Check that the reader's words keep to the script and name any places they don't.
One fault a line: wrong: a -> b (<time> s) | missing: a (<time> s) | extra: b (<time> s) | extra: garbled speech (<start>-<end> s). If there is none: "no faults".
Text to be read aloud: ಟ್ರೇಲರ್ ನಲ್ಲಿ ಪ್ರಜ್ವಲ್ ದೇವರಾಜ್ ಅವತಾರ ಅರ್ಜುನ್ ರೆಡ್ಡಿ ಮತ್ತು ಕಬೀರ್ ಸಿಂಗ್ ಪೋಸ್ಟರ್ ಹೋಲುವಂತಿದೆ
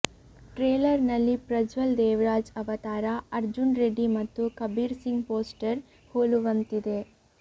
no faults